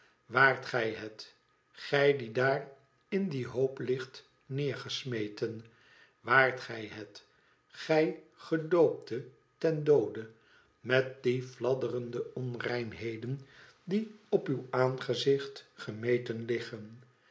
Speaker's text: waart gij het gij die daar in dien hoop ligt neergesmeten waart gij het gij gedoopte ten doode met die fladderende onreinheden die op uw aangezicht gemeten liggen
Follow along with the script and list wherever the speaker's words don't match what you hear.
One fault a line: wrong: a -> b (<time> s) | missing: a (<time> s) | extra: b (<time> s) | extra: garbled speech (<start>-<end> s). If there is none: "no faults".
no faults